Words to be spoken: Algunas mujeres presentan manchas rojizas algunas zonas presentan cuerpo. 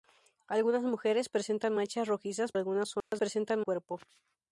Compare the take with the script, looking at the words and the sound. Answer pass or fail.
fail